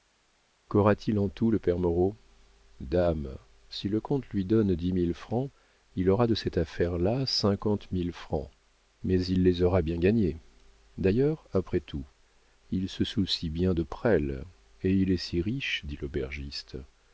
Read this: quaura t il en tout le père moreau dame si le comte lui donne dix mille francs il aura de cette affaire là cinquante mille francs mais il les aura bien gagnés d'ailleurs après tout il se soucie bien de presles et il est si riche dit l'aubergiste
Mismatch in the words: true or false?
false